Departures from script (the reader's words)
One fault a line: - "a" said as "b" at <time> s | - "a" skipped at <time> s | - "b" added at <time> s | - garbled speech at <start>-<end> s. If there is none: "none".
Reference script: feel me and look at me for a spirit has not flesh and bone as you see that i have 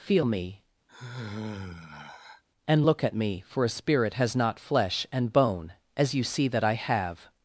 none